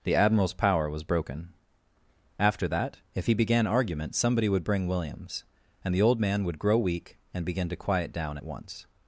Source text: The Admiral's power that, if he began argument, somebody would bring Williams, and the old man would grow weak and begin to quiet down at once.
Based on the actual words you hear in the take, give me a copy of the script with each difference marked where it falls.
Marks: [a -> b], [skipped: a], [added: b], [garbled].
The Admiral's power [added: was broken After] that, if he began argument, somebody would bring Williams, and the old man would grow weak and begin to quiet down at once.